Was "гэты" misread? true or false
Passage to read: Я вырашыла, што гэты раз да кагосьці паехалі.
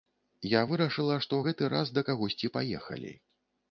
false